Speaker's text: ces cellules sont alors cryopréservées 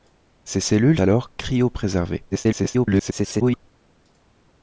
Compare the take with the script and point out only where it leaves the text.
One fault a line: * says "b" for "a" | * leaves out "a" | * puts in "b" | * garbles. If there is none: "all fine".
* leaves out "sont"
* garbles